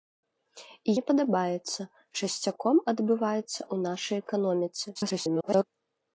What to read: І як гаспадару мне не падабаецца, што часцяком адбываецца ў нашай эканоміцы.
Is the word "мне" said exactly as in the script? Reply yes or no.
no